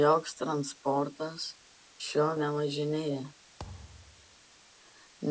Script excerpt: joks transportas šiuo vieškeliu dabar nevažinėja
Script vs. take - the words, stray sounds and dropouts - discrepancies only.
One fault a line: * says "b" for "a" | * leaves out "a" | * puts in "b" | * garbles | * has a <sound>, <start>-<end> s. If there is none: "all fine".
* leaves out "vieškeliu dabar"
* has a thud, 3.6-4.4 s